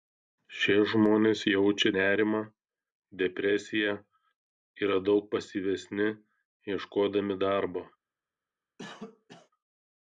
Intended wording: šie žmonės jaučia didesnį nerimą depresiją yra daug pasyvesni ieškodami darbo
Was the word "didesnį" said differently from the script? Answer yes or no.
yes